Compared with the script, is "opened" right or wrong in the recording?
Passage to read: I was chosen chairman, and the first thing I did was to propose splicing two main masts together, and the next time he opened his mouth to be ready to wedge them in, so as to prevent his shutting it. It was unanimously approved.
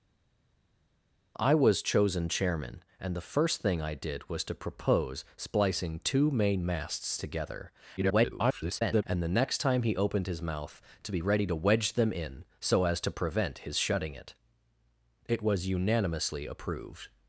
right